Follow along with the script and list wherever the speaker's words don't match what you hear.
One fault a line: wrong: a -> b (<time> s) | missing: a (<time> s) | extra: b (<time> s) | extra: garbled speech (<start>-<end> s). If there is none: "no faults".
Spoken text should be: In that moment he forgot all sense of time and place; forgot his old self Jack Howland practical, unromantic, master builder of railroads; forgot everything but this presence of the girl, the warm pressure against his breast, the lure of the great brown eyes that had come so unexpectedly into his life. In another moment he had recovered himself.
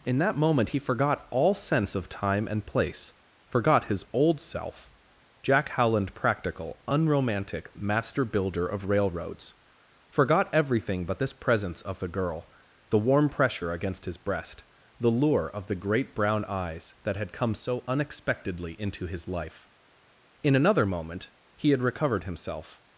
no faults